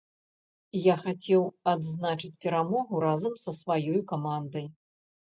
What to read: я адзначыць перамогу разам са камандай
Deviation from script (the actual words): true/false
true